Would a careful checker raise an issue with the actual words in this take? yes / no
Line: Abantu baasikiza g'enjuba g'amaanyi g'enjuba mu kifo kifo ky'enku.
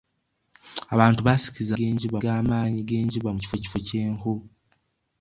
no